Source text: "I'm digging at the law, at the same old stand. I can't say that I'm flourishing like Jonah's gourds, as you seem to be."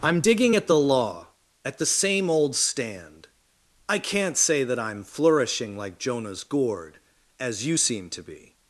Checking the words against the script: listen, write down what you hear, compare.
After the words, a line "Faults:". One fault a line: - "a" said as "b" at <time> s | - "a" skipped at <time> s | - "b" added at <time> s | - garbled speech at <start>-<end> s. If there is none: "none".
"I'm digging at the law, at the same old stand. I can't say that I'm flourishing like Jonah's gourd, as you seem to be."
Faults:
- "gourds" said as "gourd" at 6.4 s